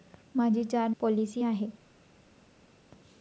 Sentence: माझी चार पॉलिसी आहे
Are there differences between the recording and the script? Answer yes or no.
no